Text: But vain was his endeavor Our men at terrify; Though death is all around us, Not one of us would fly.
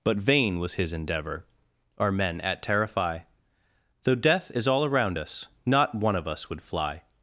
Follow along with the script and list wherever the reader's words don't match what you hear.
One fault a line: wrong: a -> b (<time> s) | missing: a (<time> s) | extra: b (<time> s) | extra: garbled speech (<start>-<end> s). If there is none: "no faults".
no faults